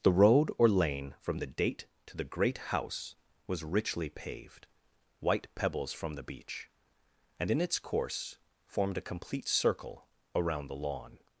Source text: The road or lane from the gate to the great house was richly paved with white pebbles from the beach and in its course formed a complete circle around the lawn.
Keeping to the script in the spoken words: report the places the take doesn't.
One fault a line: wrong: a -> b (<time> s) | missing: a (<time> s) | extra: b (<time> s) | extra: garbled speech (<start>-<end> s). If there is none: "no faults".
wrong: gate -> date (1.4 s)
missing: with (4.7 s)